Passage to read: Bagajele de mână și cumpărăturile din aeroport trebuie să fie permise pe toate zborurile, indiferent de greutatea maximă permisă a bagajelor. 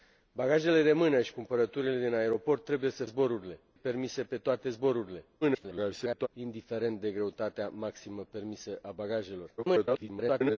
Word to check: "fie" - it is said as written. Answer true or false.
false